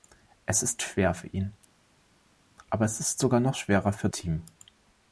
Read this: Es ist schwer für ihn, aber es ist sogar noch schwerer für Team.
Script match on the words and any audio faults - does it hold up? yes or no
yes